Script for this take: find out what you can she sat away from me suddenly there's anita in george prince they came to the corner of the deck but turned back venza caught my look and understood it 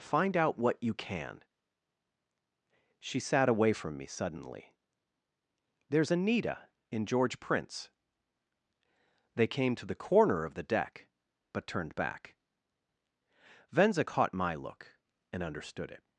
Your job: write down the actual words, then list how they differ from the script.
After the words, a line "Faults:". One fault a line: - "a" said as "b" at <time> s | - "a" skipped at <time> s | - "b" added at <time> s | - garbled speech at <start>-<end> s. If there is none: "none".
find out what you can she sat away from me suddenly there's anita in george prince they came to the corner of the deck but turned back venza caught my look and understood it
Faults:
none